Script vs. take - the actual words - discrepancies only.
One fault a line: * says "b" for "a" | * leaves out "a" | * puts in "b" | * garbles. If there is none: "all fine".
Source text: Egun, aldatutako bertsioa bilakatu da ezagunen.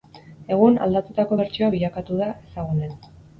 all fine